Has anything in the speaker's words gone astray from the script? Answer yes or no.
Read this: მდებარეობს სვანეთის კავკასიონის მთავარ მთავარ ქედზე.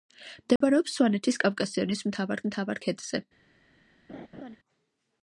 no